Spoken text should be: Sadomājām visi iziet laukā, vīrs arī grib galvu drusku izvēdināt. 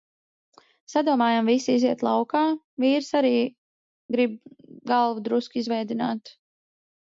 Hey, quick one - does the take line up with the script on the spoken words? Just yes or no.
yes